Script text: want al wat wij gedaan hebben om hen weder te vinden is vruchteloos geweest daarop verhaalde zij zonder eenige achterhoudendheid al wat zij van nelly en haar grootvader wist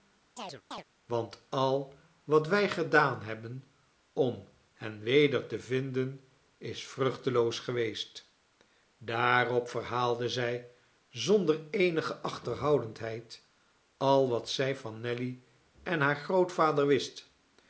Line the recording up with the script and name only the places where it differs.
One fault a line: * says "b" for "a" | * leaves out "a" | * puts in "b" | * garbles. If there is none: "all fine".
all fine